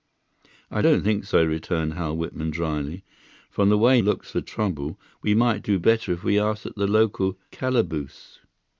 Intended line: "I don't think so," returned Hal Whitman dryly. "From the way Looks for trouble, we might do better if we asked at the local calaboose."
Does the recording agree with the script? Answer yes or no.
yes